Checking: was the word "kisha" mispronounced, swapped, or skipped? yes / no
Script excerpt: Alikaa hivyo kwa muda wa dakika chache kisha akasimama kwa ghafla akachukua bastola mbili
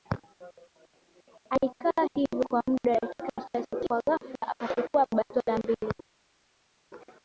yes